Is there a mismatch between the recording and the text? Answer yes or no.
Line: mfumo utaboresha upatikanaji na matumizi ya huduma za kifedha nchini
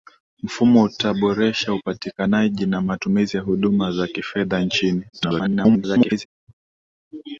yes